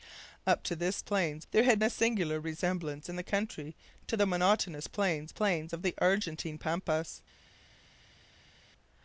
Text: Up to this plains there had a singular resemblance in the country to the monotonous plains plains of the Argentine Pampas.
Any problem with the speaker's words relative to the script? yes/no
no